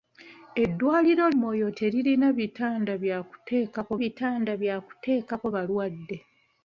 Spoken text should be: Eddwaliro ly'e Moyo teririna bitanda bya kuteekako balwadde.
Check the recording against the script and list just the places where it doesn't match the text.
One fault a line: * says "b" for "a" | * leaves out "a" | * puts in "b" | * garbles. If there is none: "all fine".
* leaves out "ly'e"
* puts in "bitanda bya kuteekako"